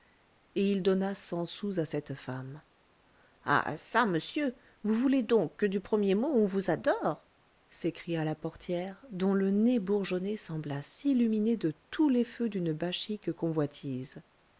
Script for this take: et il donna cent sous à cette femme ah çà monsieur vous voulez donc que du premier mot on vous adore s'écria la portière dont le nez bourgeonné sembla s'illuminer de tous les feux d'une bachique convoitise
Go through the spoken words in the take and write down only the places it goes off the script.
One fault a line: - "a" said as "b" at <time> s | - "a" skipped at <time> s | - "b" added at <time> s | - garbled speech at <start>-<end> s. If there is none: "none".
none